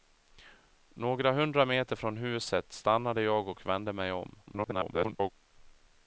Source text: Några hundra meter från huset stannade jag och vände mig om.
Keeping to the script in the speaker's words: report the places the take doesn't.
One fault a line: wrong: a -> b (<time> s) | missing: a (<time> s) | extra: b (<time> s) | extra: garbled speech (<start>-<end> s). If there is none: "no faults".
extra: garbled speech (4.5-5.3 s)